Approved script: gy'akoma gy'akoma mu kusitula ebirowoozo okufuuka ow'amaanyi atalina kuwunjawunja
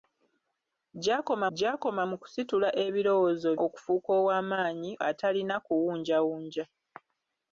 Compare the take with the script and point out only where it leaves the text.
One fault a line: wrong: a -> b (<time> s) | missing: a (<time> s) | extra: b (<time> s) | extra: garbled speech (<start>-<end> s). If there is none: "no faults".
no faults